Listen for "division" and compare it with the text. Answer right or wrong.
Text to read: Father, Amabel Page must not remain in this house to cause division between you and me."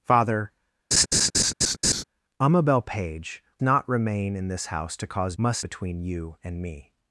wrong